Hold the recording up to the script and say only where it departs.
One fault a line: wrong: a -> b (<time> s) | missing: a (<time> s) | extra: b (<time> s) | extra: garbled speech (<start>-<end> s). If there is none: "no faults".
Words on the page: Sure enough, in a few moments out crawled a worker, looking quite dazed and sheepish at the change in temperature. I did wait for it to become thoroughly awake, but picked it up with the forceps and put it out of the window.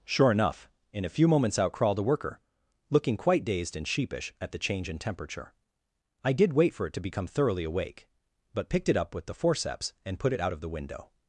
no faults